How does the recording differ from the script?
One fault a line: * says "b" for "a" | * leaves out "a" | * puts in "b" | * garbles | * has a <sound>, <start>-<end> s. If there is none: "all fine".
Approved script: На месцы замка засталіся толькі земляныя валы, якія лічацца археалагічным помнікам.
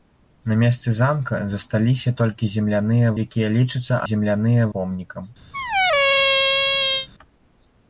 * leaves out "валы"
* says "земляныя" for "археалагічным"
* has a squeak, 5.5-7.1 s